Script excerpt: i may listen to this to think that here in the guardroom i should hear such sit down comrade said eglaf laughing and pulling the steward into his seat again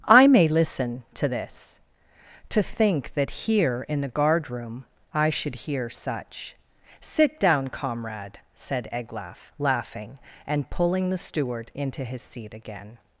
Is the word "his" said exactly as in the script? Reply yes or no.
yes